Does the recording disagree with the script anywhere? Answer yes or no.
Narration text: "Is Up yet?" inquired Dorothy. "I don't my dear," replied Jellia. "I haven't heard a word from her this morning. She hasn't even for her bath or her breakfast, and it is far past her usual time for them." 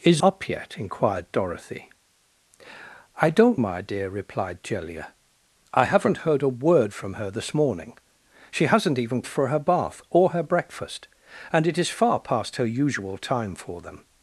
no